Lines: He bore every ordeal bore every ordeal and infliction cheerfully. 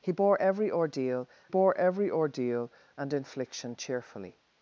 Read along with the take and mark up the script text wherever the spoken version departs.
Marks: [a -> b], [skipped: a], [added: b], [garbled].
He bore every ordeal bore every ordeal and infliction cheerfully.